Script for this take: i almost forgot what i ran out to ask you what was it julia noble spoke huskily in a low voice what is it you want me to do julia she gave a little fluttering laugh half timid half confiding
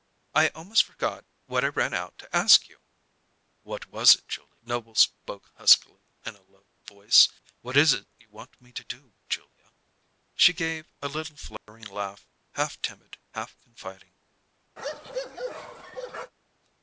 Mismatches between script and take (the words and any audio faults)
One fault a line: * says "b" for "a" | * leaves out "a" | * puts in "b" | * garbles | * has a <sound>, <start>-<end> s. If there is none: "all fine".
* has a dropout, 11.6-11.7 s
* has a bark, 14.8-16.3 s